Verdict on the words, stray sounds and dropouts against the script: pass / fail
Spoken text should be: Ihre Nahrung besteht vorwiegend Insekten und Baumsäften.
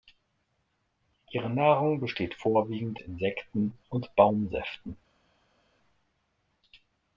pass